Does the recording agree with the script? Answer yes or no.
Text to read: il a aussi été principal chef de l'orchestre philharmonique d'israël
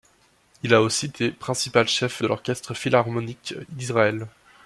yes